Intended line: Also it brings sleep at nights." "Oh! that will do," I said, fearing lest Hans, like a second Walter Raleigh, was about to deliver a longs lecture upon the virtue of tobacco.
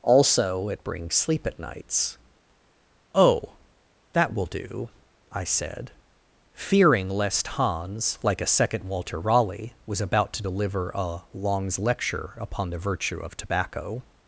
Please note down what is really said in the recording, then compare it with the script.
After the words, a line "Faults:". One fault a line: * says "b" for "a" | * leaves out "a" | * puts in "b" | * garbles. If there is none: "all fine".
Also it brings sleep at nights." "Oh! that will do," I said, fearing lest Hans, like a second Walter Raleigh, was about to deliver a longs lecture upon the virtue of tobacco.
Faults:
all fine